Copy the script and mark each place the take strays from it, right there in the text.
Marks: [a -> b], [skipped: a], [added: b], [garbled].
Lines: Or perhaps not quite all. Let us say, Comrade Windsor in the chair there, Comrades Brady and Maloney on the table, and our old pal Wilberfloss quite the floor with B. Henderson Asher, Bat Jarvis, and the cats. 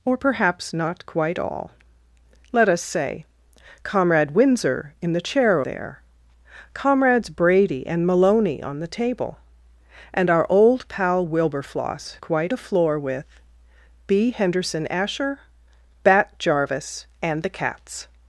Or perhaps not quite all. Let us say, Comrade Windsor in the chair there, Comrades Brady and Maloney on the table, and our old pal Wilberfloss quite the floor with B. Henderson Asher, Bat Jarvis, and the cats.